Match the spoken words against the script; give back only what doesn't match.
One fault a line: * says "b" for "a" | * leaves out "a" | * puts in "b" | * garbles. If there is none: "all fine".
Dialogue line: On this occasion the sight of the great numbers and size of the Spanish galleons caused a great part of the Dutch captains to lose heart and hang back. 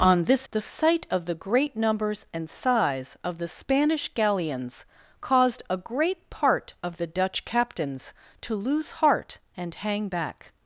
* leaves out "occasion"